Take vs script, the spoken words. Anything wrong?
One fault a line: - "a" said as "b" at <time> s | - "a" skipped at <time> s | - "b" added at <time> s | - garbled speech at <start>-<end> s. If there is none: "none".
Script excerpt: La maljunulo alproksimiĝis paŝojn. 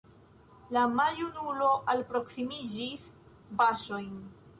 none